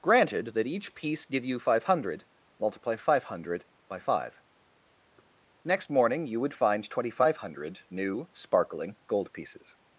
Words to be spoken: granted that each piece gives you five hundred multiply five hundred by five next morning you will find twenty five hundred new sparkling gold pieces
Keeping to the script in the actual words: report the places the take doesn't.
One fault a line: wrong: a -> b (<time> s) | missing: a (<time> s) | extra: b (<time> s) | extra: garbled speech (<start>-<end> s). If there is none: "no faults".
wrong: gives -> give (1.2 s)
wrong: will -> would (6.4 s)